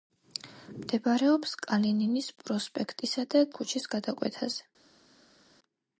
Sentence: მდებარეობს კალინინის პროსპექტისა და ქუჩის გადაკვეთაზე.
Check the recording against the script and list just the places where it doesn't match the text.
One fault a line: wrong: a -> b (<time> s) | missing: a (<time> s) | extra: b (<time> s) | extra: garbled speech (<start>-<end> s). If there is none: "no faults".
no faults